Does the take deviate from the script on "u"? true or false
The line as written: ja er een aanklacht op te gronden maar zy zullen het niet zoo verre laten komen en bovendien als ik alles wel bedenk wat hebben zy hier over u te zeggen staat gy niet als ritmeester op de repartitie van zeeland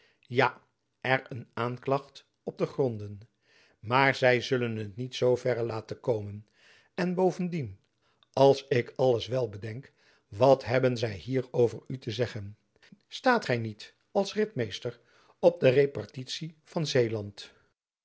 false